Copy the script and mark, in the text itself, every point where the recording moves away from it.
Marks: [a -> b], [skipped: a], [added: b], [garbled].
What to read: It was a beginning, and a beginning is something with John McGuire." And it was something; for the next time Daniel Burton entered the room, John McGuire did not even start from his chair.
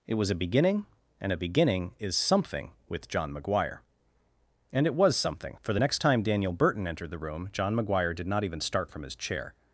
It was a beginning, and a beginning is something with John McGuire." And it was something; for the next time Daniel Burton entered the room, John McGuire did not even start from his chair.